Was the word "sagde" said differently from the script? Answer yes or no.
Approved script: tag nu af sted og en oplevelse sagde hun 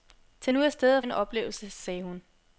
no